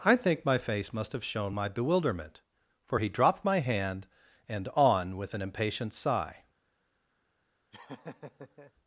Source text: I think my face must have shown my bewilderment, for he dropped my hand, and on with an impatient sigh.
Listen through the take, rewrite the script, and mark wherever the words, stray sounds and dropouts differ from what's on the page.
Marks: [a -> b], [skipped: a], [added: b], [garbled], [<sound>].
I think my face must have shown my bewilderment, for he dropped my hand, and on with an impatient sigh. [laugh]